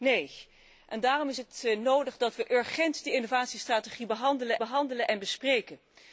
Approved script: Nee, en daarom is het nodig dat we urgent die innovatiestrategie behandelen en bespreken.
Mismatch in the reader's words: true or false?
true